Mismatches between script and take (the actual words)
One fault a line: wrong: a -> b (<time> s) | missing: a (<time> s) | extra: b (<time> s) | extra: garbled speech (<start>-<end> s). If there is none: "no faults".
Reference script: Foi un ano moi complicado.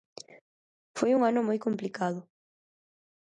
no faults